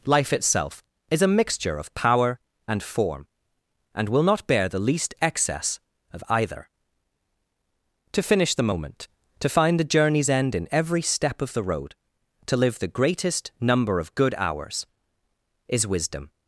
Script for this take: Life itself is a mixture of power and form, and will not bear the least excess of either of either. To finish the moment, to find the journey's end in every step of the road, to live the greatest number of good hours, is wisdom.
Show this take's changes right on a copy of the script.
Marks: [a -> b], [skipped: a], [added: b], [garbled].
Life itself is a mixture of power and form, and will not bear the least excess of either [skipped: of either.] To finish the moment, to find the journey's end in every step of the road, to live the greatest number of good hours, is wisdom.